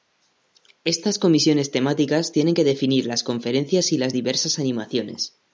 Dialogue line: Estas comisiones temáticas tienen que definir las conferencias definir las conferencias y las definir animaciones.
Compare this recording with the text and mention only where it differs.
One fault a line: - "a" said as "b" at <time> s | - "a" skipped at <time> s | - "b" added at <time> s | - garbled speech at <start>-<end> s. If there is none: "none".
- "definir las conferencias" skipped at 3.9 s
- "definir" said as "diversas" at 4.1 s